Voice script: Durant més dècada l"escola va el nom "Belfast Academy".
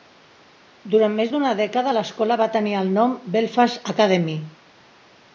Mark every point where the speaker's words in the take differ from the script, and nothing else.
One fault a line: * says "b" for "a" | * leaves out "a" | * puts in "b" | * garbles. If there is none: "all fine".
* puts in "d"una"
* puts in "tenir"